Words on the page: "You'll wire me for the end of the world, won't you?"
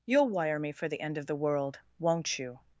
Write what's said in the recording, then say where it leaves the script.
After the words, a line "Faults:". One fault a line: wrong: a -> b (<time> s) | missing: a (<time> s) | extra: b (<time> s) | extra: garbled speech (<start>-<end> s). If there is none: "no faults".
"You'll wire me for the end of the world, won't you?"
Faults:
no faults